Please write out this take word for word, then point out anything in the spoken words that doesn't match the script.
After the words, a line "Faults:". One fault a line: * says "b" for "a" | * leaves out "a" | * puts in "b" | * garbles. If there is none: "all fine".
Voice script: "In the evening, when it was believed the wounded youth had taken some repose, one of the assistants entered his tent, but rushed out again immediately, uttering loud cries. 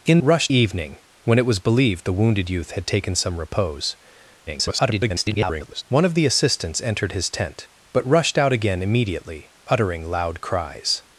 "In rushed evening, when it was believed the wounded youth had taken some repose, [garbled] one of the assistants entered his tent, but rushed out again immediately, uttering loud cries.
Faults:
* says "rushed" for "the"
* garbles